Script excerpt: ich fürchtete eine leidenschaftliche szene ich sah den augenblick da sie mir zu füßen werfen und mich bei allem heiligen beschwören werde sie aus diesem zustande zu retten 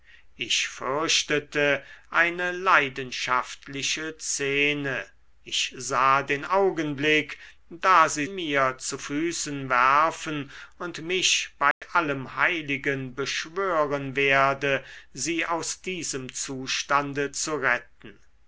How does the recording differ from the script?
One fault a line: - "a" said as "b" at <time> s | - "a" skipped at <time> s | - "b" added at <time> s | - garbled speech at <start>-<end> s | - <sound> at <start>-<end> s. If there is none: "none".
- dropout at 11.7-11.8 s